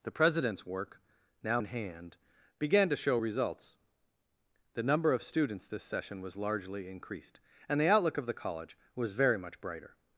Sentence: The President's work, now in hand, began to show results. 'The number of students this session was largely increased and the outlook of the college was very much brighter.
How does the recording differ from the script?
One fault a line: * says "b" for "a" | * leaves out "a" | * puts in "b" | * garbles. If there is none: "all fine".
all fine